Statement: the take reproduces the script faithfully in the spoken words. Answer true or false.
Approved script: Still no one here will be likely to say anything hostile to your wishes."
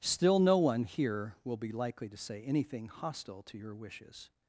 true